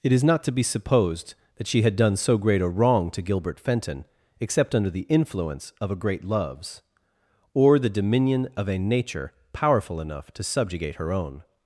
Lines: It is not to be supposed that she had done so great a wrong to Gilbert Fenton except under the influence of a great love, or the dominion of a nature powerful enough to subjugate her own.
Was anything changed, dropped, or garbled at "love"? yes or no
yes